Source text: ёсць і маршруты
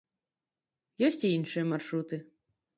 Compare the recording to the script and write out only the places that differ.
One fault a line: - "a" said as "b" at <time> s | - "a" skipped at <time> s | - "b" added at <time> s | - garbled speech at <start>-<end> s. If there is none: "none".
- "іншыя" added at 1.4 s